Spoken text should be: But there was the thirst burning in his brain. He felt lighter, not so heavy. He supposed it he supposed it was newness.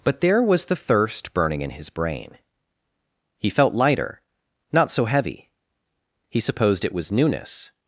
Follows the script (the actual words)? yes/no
no